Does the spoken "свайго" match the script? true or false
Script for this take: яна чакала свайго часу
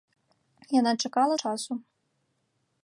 false